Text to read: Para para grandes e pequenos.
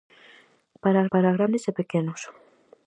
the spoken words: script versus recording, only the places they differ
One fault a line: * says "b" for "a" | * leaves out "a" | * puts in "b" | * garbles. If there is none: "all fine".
all fine